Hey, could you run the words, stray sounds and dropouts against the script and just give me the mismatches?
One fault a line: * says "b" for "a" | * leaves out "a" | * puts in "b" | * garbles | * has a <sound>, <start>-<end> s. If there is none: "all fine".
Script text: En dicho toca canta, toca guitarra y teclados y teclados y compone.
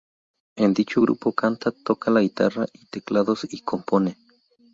* says "grupo" for "toca"
* puts in "la"
* leaves out "teclados y"